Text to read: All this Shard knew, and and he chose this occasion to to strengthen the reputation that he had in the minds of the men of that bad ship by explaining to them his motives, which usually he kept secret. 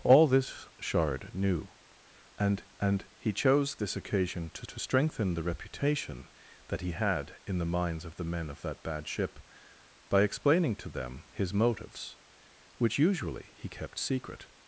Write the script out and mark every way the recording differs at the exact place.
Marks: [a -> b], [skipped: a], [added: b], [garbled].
All this Shard knew, and and he chose this occasion to to strengthen the reputation that he had in the minds of the men of that bad ship by explaining to them his motives, which usually he kept secret.